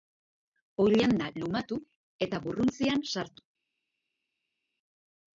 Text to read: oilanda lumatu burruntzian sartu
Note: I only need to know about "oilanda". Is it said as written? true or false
true